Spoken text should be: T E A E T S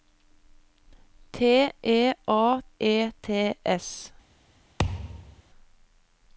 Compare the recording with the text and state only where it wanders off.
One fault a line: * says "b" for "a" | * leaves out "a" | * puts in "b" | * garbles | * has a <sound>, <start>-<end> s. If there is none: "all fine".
* has a thud, 4.8-5.4 s